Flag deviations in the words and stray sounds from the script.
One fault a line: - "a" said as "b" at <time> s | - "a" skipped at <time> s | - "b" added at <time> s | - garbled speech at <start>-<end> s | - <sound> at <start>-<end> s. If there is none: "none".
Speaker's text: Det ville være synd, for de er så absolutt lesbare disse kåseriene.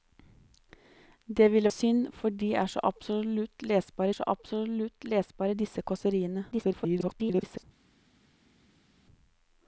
- "være" skipped at 1.7 s
- "så absolutt lesbare" added at 4.1 s
- garbled speech at 6.5-7.6 s